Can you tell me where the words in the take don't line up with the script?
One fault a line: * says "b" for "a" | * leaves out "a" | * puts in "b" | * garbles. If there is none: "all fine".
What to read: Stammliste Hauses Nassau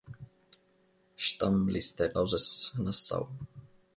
all fine